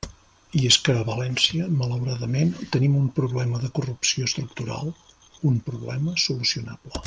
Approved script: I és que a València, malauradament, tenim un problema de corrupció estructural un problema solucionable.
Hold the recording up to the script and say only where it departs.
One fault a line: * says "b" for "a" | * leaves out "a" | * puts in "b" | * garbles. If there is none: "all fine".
all fine